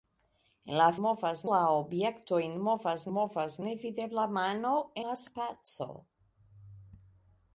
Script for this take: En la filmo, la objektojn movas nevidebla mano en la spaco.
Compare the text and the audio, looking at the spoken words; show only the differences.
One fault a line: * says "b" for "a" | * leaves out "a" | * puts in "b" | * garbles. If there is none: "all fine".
* says "movas" for "filmo"
* puts in "movas"
* leaves out "en"